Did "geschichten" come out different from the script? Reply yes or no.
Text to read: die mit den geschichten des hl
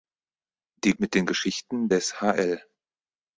no